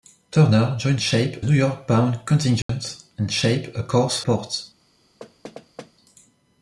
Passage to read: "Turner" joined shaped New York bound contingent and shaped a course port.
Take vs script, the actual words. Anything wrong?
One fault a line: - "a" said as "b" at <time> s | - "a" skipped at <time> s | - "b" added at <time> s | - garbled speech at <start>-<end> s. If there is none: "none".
none